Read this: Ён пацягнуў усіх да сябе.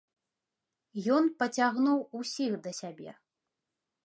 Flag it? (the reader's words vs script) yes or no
no